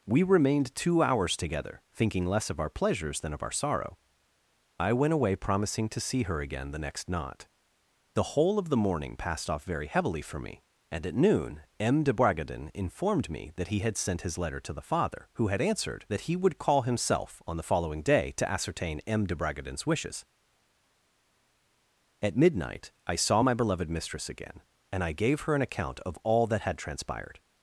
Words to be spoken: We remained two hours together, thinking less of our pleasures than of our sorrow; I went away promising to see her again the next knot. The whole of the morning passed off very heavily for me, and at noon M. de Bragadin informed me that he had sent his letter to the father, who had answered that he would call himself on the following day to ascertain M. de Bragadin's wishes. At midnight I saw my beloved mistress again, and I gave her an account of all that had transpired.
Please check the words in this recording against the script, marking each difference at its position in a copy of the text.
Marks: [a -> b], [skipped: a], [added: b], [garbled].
We remained two hours together, thinking less of our pleasures than of our sorrow; I went away promising to see her again the next knot. The whole of the morning passed off very heavily for me, and at noon M. de Bragadin informed me that he had sent his letter to the father, who had answered that he would call himself on the following day to ascertain M. de Bragadin's wishes. At midnight I saw my beloved mistress again, and I gave her an account of all that had transpired.